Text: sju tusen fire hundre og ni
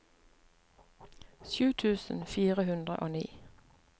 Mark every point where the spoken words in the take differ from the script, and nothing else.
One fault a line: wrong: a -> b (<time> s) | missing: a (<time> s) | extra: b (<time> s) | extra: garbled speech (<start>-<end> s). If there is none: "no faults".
no faults